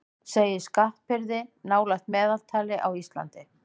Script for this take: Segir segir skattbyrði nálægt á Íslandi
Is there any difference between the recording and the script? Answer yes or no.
yes